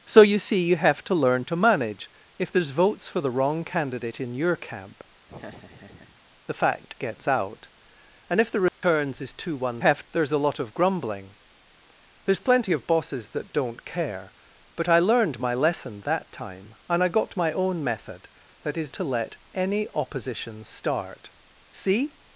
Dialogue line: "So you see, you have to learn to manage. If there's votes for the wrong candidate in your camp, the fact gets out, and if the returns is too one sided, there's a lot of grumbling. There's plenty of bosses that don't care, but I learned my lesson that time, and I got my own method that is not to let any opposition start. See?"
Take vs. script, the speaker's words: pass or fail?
fail